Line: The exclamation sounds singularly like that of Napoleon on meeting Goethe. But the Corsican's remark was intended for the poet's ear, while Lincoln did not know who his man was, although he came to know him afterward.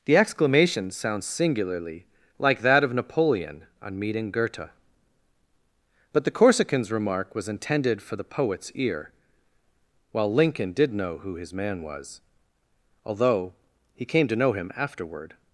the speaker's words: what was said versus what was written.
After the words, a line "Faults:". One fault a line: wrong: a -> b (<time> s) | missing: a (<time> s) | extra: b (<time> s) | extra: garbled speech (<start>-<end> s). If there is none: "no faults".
The exclamation sounds singularly like that of Napoleon on meeting Goethe. But the Corsican's remark was intended for the poet's ear, while Lincoln did know who his man was, although he came to know him afterward.
Faults:
missing: not (10.9 s)